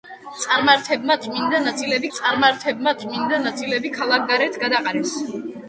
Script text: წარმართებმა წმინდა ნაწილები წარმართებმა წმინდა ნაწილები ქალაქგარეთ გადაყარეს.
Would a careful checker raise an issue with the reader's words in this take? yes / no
no